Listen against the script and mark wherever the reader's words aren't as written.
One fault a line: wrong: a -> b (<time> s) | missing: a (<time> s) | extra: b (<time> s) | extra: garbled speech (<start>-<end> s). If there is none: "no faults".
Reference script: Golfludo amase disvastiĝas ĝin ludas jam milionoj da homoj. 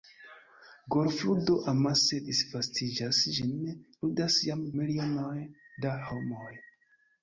no faults